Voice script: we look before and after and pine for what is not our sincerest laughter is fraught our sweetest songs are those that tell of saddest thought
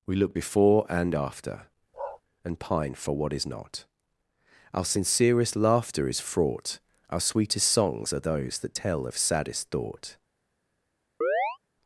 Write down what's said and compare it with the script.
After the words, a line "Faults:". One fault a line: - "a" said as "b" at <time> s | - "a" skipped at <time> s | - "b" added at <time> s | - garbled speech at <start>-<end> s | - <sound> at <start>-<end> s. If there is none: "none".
we look before and after and pine for what is not our sincerest laughter is fraught our sweetest songs are those that tell of saddest thought
Faults:
- bark at 1.9-2.2 s
- chirp at 11.2-11.6 s